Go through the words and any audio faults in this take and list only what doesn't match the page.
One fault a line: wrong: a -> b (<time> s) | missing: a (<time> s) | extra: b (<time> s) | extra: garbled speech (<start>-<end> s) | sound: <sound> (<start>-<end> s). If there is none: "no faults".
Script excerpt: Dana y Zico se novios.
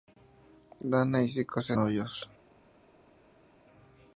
no faults